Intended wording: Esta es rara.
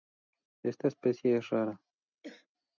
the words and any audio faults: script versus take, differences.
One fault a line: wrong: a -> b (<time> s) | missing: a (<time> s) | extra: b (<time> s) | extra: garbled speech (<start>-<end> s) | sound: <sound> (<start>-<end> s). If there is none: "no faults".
extra: especie (0.9 s)
sound: throat clearing (2.2-2.5 s)